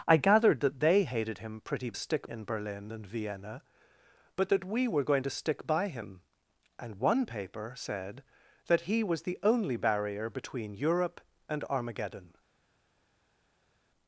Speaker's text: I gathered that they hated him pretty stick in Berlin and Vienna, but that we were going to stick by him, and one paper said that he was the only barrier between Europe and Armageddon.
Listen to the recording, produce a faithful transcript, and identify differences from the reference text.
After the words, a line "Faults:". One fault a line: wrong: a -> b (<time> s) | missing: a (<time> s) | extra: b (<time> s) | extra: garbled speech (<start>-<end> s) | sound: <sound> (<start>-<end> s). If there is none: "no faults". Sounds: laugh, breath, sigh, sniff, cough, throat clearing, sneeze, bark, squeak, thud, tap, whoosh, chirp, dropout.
I gathered that they hated him pretty stick in Berlin and Vienna, but that we were going to stick by him, and one paper said that he was the only barrier between Europe and Armageddon.
Faults:
no faults